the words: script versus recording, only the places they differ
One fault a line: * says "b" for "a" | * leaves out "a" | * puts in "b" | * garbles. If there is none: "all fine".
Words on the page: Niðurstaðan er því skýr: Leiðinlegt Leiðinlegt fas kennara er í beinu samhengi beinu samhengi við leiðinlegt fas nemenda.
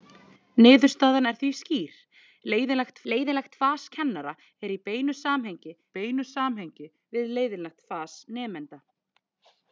all fine